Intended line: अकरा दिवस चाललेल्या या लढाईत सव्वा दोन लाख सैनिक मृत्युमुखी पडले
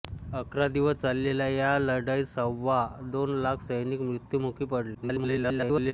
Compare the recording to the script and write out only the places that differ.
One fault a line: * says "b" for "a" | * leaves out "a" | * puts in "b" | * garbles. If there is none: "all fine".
* garbles